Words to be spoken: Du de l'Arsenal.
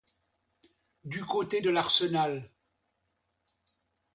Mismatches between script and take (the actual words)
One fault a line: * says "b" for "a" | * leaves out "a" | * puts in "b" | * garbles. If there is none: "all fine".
* puts in "côté"